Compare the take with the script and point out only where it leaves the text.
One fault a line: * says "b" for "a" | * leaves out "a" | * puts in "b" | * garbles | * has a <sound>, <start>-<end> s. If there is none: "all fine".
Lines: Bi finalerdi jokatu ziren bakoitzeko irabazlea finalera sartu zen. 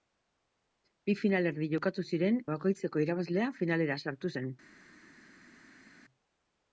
all fine